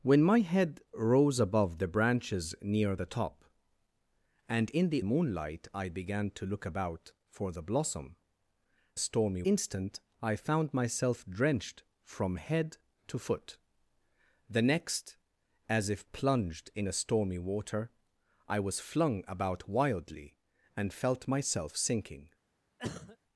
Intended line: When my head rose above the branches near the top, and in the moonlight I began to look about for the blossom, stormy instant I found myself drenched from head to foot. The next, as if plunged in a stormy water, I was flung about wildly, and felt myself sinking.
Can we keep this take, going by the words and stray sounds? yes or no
no